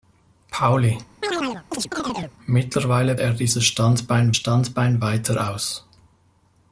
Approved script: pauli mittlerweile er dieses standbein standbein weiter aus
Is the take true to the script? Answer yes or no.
yes